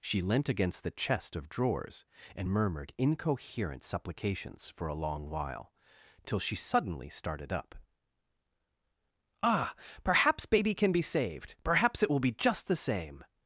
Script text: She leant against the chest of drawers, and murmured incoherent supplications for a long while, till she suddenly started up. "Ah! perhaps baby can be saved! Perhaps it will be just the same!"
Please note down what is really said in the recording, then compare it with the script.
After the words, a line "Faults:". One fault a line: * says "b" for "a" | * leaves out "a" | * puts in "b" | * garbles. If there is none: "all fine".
She leant against the chest of drawers, and murmured incoherent supplications for a long while, till she suddenly started up. "Ah! perhaps baby can be saved! Perhaps it will be just the same!"
Faults:
all fine